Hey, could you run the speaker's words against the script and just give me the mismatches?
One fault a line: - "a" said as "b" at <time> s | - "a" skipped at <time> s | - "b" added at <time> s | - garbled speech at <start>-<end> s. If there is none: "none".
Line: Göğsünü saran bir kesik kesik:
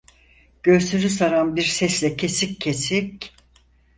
- "sesle" added at 1.6 s